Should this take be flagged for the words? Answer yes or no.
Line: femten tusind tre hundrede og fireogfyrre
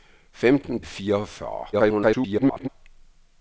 yes